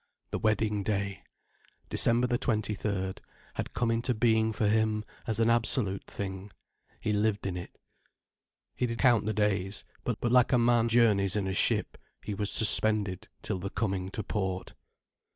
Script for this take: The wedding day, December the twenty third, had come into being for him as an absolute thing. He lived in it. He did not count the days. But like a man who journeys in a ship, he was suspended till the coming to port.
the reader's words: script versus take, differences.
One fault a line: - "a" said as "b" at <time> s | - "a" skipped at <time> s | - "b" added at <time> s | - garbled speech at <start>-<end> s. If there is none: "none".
- "not" skipped at 9.0 s
- "but" added at 10.2 s
- "who" skipped at 10.9 s